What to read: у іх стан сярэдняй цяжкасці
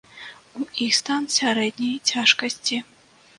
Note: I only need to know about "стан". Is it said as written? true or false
true